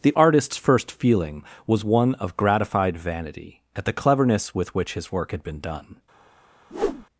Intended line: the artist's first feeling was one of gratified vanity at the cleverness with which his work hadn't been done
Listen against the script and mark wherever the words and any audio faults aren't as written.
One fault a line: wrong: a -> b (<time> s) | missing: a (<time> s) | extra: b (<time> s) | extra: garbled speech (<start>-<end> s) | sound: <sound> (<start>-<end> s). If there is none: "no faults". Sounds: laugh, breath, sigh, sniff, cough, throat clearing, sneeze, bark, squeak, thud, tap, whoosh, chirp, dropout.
wrong: hadn't -> had (5.3 s)
sound: whoosh (6.7-7.0 s)